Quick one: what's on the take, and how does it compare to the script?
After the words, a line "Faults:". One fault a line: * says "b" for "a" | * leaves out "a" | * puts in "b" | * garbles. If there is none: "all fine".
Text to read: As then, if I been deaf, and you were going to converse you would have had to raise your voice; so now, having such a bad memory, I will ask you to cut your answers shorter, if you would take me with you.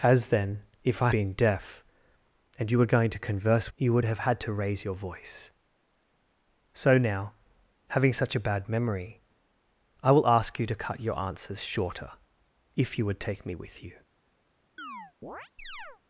As then, if I been deaf, and you were going to converse you would have had to raise your voice; so now, having such a bad memory, I will ask you to cut your answers shorter, if you would take me with you.
Faults:
all fine